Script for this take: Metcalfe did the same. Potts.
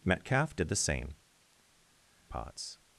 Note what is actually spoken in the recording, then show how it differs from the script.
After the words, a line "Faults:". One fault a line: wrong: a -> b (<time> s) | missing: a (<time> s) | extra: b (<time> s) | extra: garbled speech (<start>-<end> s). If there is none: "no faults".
Metcalfe did the same. Potts.
Faults:
no faults